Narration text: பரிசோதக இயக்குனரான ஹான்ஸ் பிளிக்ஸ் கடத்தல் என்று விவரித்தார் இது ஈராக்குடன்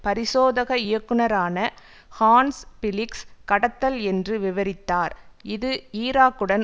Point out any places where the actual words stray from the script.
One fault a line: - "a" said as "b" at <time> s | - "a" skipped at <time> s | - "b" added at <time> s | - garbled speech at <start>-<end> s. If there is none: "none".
none